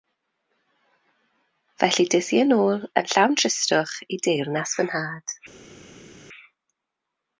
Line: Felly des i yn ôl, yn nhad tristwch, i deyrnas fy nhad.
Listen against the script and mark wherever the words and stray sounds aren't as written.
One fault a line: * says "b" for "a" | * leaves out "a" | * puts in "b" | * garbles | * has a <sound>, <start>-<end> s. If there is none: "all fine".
* says "llawn" for "nhad"